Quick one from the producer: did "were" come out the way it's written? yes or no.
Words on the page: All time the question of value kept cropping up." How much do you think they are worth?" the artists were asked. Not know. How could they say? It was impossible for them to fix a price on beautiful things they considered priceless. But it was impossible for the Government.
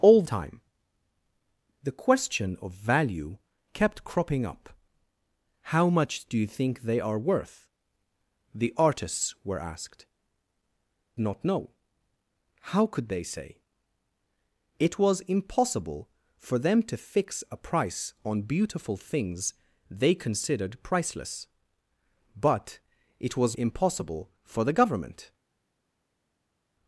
yes